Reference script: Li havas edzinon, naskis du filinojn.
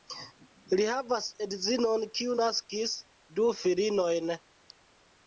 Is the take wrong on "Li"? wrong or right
right